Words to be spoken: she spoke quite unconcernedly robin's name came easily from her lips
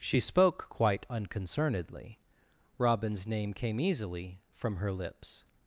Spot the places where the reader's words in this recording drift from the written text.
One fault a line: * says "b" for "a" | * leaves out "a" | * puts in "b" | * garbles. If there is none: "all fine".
all fine